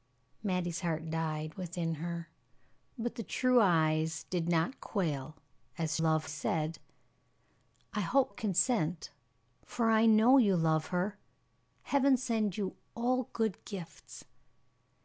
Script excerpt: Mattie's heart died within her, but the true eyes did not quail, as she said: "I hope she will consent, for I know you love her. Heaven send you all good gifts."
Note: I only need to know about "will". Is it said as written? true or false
false